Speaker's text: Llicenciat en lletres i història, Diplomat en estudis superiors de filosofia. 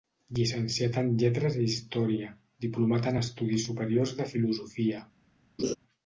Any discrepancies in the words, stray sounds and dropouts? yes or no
yes